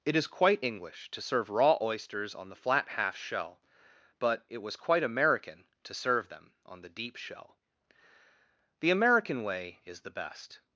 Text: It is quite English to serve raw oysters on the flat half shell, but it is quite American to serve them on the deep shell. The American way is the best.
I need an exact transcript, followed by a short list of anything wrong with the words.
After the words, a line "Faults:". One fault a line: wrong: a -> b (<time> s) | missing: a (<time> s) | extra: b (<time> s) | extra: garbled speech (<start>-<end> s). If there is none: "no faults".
It is quite English to serve raw oysters on the flat half shell, but it was quite American to serve them on the deep shell. The American way is the best.
Faults:
wrong: is -> was (4.6 s)